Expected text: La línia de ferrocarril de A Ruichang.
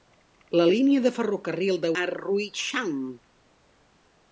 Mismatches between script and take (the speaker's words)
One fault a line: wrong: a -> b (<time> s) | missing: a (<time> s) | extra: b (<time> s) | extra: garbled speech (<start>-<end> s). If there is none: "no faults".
no faults